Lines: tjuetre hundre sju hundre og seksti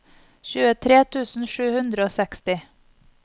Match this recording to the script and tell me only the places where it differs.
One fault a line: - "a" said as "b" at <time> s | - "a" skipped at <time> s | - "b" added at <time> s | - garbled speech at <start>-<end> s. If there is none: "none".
- "hundre" said as "tusen" at 1.1 s